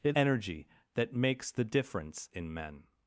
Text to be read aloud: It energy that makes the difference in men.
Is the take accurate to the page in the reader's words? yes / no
yes